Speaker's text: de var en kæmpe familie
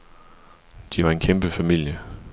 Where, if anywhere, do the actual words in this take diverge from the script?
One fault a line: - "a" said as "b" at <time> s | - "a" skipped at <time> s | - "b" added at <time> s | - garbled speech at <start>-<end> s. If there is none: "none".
none